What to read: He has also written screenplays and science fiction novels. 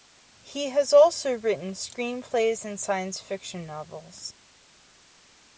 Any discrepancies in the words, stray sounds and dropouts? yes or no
no